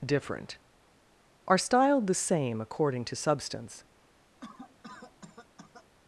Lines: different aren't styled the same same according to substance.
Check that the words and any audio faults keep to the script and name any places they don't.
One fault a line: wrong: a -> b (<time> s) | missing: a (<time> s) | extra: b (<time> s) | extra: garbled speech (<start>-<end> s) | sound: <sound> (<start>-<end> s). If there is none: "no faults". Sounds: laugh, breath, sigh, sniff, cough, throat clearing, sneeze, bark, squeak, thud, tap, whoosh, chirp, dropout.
wrong: aren't -> are (1.5 s)
missing: same (2.6 s)
sound: cough (4.4-5.9 s)